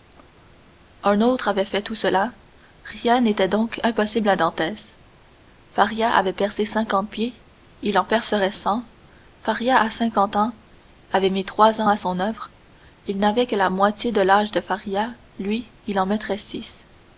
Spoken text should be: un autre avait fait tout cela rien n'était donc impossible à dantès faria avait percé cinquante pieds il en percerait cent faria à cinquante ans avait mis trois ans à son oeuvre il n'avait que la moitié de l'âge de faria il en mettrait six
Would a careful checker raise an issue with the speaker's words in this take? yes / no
yes